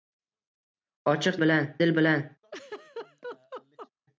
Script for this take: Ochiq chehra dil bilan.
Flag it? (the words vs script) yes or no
yes